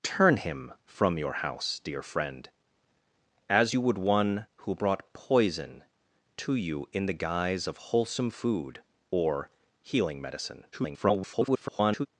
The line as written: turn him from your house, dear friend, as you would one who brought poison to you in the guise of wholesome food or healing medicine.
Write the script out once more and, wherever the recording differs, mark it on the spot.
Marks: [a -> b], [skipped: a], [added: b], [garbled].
turn him from your house, dear friend, as you would one who brought poison to you in the guise of wholesome food or healing medicine. [garbled]